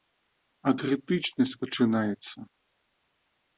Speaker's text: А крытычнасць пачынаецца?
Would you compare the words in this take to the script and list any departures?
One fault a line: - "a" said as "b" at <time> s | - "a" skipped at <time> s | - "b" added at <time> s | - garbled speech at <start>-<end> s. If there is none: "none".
none